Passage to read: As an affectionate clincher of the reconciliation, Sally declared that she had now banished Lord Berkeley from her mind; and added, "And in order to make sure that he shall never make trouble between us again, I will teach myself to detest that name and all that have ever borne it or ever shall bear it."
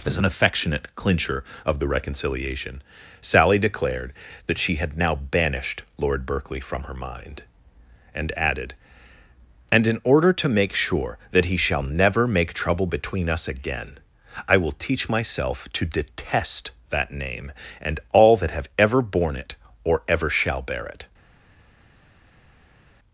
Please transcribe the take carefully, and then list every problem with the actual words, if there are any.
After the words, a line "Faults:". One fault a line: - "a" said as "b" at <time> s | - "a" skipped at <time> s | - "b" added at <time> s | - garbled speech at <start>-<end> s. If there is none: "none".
As an affectionate clincher of the reconciliation, Sally declared that she had now banished Lord Berkeley from her mind; and added, "And in order to make sure that he shall never make trouble between us again, I will teach myself to detest that name and all that have ever borne it or ever shall bear it."
Faults:
none